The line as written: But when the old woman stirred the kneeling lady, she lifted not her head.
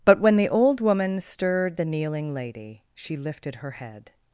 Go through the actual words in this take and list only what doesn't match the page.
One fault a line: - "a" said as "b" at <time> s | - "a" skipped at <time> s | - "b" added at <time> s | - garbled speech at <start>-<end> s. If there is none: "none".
- "not" skipped at 3.6 s